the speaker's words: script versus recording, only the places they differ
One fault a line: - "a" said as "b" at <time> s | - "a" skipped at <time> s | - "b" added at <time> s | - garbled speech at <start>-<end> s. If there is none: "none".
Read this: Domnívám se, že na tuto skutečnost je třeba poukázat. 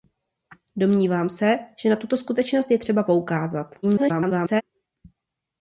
- garbled speech at 3.8-4.6 s